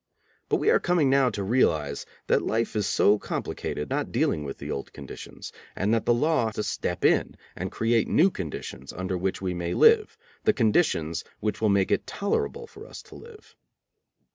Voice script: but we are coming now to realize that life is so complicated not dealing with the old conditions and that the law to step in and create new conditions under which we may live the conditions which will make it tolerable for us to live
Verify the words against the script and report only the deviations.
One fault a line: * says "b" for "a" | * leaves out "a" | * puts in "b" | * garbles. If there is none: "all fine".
all fine